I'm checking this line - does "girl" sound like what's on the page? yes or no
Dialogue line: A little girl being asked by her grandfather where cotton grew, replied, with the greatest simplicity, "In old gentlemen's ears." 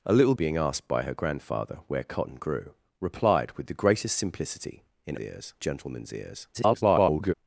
no